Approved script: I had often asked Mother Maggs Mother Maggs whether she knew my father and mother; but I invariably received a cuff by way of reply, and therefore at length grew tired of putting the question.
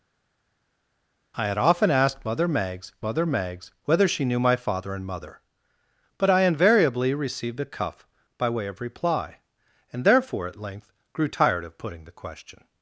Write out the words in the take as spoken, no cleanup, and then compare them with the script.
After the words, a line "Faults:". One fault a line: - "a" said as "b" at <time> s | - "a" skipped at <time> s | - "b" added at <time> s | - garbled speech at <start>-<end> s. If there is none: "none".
I had often asked Mother Maggs Mother Maggs whether she knew my father and mother; but I invariably received a cuff by way of reply, and therefore at length grew tired of putting the question.
Faults:
none